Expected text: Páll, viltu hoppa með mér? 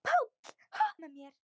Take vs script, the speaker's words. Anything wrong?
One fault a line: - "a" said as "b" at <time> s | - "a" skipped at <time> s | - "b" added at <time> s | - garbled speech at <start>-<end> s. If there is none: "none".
- "viltu hoppa" skipped at 0.3 s